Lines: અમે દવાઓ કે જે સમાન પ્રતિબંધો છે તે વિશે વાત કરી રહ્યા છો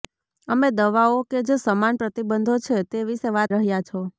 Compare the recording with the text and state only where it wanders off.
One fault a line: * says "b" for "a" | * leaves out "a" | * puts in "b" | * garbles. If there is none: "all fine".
* leaves out "કરી"